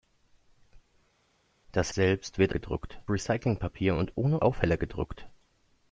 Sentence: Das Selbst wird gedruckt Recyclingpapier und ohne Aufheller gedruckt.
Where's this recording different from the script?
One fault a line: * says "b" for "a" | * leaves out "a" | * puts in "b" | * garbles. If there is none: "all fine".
all fine